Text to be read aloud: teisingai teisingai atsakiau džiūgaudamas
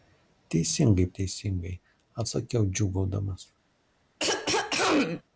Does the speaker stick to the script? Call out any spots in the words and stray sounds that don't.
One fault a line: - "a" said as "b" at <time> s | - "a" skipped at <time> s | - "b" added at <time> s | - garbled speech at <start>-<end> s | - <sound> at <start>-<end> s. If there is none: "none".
- throat clearing at 4.2-5.2 s